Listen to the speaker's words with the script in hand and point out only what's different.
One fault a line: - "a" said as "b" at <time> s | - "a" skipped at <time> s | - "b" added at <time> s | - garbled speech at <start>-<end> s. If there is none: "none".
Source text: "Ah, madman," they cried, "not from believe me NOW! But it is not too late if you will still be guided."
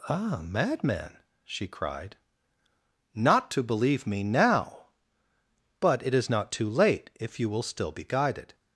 - "they" said as "she" at 1.4 s
- "from" said as "to" at 3.5 s